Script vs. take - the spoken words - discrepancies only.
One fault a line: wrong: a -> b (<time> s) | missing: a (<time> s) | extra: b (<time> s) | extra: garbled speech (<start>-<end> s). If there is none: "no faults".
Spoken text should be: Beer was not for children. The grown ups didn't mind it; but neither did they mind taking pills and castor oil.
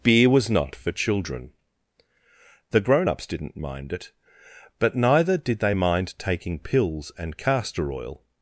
no faults